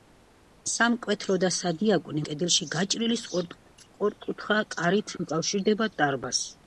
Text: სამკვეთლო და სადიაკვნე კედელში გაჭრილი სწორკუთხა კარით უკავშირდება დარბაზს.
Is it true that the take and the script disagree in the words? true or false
false